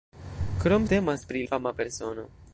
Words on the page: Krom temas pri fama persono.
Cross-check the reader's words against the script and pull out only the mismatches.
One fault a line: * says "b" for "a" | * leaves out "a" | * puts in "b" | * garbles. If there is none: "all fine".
all fine